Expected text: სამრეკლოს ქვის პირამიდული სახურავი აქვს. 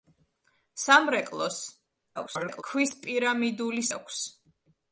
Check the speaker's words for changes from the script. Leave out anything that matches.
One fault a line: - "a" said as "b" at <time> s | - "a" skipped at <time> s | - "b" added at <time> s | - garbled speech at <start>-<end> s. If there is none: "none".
- garbled speech at 2.2-2.6 s
- "სახურავი" skipped at 3.8 s